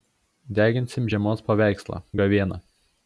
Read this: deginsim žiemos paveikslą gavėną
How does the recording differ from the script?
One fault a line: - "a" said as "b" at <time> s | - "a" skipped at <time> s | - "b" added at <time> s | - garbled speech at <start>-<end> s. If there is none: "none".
none